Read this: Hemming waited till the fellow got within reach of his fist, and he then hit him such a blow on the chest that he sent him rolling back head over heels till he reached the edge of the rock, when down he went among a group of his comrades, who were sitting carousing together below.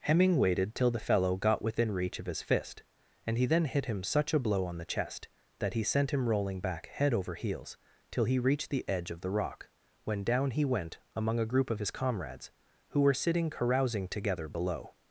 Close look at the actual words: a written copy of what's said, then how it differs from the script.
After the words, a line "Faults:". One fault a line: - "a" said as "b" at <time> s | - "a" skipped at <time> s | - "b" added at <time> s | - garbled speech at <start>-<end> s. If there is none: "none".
Hemming waited till the fellow got within reach of his fist, and he then hit him such a blow on the chest that he sent him rolling back head over heels till he reached the edge of the rock, when down he went among a group of his comrades, who were sitting carousing together below.
Faults:
none